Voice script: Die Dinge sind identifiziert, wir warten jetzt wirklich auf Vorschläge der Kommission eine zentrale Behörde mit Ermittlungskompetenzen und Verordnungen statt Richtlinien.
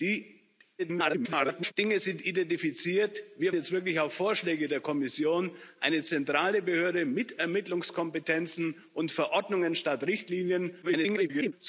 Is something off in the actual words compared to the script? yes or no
yes